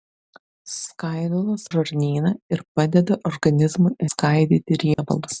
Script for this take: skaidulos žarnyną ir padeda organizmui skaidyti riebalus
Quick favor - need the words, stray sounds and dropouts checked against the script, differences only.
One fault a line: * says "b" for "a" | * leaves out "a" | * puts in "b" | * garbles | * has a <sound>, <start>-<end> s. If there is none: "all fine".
* has a dropout, 4.9-5.0 s